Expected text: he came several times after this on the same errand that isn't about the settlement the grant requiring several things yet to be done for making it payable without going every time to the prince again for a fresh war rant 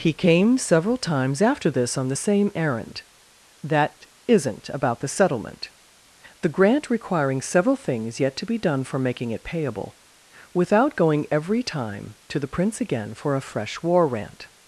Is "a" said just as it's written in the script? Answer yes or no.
yes